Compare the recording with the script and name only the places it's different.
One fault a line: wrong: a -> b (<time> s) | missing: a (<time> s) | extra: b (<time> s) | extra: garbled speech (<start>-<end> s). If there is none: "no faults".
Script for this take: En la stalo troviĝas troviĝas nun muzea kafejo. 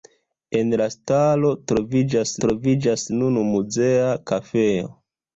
no faults